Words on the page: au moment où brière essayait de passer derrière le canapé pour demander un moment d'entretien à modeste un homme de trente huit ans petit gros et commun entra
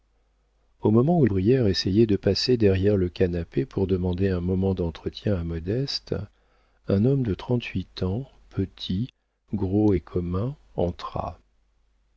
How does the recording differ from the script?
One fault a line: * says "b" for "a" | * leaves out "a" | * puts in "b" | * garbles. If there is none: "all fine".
all fine